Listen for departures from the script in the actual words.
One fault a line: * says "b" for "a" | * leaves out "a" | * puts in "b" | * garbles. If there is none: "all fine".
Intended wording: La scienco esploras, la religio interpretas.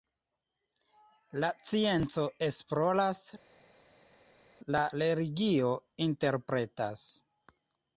all fine